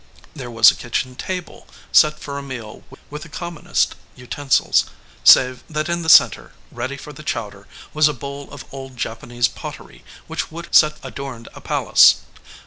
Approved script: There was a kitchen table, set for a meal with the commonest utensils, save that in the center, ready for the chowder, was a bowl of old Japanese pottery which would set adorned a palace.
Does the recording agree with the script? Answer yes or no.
yes